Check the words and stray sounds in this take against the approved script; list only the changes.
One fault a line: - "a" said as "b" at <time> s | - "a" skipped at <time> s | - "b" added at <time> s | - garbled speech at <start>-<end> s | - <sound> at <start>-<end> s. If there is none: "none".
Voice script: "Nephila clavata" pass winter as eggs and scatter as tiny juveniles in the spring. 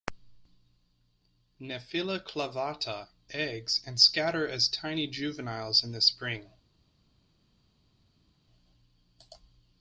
- "pass winter as" skipped at 3.1 s